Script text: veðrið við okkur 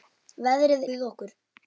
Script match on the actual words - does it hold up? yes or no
yes